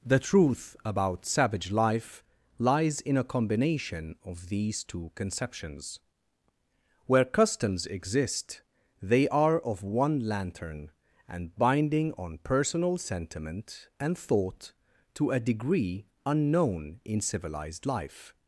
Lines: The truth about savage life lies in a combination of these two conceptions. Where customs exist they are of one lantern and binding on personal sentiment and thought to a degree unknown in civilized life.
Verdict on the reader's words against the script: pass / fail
pass